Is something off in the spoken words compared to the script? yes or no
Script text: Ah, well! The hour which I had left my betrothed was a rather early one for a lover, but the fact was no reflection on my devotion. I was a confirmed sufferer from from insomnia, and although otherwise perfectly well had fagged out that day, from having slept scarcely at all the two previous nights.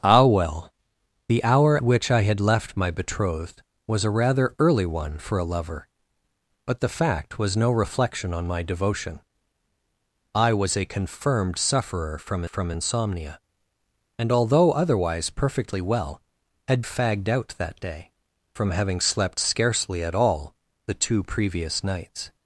no